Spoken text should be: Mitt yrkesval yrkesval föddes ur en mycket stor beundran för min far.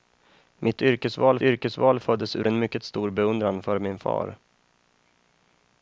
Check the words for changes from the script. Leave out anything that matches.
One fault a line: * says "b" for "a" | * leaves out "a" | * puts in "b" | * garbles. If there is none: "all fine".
all fine